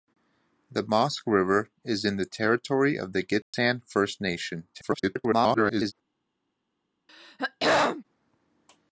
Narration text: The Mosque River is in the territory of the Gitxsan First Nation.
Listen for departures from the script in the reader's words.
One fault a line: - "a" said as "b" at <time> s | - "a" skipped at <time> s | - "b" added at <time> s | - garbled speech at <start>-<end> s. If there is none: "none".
- garbled speech at 4.7-5.9 s